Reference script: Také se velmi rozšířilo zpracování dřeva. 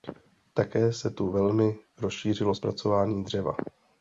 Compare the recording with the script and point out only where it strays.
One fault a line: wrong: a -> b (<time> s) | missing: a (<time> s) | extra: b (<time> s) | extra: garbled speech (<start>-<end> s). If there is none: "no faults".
extra: tu (1.1 s)